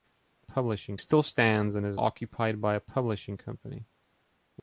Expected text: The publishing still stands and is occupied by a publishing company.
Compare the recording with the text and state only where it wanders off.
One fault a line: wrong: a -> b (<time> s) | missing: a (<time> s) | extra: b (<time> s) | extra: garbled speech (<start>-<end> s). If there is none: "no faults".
no faults